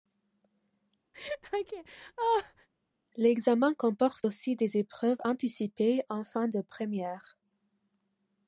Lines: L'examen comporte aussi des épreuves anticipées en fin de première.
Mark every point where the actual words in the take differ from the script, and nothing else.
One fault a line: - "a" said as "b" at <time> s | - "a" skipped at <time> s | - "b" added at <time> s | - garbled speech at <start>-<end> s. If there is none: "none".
none